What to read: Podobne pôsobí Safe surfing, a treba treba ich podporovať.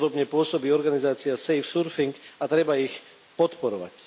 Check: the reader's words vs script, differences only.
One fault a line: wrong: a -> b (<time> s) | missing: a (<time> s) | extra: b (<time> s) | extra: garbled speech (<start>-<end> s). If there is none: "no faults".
extra: organizácia (0.7 s)
missing: treba (2.8 s)